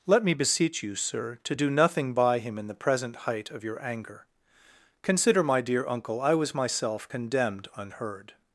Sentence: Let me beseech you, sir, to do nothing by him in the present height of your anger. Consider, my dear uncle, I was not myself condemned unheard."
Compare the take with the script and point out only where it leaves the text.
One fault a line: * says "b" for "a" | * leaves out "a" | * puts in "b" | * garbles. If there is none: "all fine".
* leaves out "not"